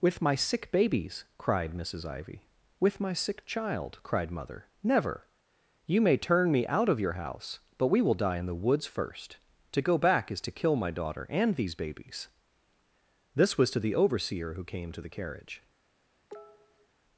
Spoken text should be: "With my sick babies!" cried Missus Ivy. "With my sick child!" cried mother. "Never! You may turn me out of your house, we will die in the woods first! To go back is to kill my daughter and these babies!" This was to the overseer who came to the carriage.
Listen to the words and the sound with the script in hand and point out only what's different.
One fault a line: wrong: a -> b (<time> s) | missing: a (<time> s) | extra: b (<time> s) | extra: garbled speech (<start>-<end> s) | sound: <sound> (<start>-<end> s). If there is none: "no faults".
extra: but (7.8 s)
sound: cough (16.3-16.9 s)